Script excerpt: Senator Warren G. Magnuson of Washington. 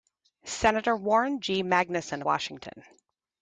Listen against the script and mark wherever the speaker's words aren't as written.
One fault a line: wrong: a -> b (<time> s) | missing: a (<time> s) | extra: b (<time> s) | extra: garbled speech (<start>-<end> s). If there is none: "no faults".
missing: of (2.2 s)